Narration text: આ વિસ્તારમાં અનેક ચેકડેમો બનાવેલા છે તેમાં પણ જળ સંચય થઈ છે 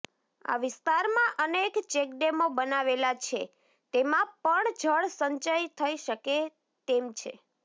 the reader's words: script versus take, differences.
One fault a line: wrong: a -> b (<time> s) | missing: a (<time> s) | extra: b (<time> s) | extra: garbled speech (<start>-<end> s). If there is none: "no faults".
extra: શકે તેમ (6.0 s)